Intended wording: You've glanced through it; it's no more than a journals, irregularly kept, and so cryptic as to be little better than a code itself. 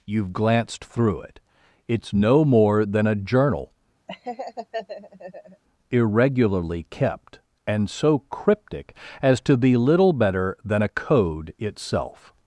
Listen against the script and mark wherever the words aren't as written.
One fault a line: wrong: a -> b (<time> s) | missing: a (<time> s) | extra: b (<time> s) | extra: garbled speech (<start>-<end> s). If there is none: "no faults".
wrong: journals -> journal (3.1 s)